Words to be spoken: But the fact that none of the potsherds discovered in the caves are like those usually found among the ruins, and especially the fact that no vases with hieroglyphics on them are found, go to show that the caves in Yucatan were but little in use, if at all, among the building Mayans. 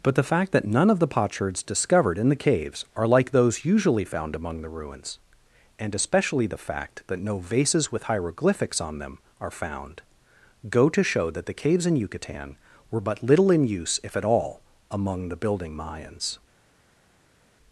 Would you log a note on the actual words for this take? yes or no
no